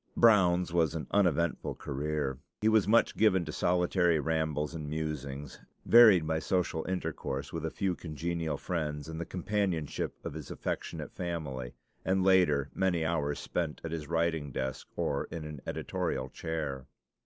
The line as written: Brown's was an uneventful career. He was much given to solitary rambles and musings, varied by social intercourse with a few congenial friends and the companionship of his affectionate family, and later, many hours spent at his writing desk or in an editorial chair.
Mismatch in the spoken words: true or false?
false